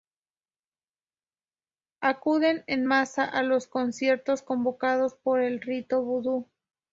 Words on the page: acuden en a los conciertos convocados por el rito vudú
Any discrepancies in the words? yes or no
yes